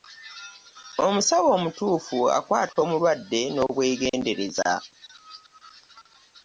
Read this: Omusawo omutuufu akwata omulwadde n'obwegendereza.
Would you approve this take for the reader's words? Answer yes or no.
yes